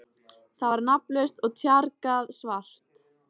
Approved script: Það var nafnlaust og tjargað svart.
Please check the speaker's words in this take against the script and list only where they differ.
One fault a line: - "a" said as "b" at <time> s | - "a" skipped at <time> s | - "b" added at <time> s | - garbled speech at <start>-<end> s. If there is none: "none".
none